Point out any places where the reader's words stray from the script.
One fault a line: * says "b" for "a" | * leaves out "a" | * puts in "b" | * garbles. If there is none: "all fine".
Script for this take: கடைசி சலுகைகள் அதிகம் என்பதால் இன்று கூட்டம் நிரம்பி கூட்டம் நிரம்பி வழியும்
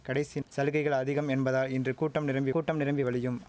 all fine